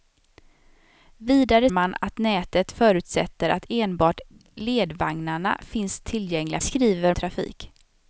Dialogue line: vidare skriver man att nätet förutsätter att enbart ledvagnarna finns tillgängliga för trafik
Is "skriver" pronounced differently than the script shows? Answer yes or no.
yes